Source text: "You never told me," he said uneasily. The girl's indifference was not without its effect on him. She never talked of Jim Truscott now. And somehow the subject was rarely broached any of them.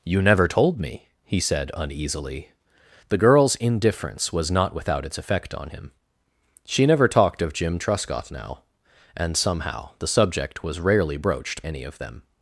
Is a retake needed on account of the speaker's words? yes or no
no